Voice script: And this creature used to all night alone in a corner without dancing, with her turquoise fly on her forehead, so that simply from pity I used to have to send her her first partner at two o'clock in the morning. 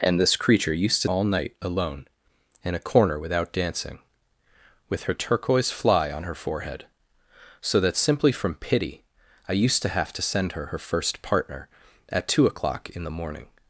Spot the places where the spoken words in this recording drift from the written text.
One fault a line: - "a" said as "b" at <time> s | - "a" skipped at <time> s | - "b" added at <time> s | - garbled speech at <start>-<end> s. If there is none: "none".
none